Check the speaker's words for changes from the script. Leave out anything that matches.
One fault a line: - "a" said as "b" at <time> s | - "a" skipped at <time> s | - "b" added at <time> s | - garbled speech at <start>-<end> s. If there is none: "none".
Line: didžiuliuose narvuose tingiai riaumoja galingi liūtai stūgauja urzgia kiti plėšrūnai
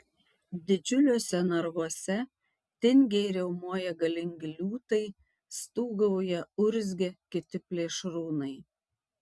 none